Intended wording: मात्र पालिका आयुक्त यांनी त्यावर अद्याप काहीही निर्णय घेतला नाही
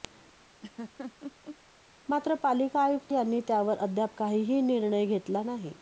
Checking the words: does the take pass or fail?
pass